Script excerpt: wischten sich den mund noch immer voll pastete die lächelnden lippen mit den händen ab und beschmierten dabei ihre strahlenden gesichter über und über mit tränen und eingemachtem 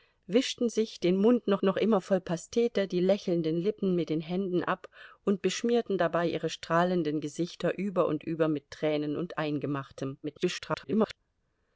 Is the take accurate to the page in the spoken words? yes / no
no